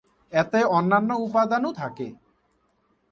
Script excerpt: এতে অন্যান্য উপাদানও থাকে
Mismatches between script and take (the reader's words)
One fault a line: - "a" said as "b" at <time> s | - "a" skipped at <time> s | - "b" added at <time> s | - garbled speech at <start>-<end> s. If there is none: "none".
none